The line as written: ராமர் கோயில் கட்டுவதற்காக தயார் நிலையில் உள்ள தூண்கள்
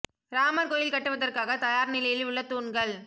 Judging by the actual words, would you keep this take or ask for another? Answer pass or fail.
pass